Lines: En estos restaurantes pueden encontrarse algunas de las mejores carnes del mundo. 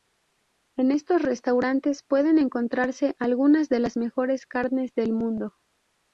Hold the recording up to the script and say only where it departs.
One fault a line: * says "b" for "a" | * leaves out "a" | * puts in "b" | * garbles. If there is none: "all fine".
all fine